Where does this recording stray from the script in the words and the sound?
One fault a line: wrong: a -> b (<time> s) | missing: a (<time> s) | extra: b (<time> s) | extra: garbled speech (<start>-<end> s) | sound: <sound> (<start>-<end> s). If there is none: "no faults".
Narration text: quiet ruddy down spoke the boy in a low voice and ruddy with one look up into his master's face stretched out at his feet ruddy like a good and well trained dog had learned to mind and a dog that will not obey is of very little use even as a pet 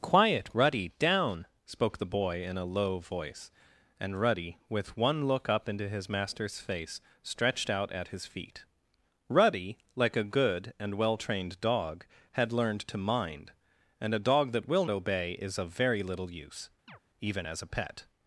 missing: not (14.9 s)
sound: chirp (16.9-17.0 s)